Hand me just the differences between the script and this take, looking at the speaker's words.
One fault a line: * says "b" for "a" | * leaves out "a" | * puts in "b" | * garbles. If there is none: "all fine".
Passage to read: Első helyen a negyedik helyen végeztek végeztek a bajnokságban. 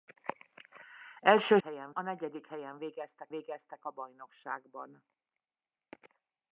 all fine